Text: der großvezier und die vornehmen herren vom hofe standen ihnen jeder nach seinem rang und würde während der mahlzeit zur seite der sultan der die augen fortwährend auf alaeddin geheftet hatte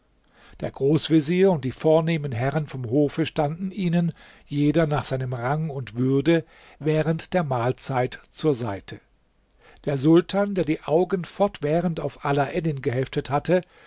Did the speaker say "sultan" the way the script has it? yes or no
yes